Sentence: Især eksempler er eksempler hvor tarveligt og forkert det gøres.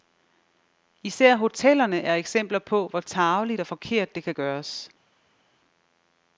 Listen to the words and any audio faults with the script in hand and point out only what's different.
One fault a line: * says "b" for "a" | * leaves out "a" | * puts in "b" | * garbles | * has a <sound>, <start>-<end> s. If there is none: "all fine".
* says "hotellerne" for "eksempler"
* puts in "på"
* puts in "kan"